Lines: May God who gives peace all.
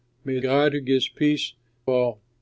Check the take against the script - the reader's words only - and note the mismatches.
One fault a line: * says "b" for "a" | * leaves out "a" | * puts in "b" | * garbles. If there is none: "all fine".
all fine